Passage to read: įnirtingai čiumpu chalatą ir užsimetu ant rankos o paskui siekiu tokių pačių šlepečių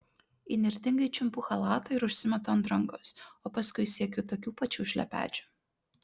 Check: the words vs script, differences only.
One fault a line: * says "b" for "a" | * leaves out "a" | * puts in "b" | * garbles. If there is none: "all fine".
all fine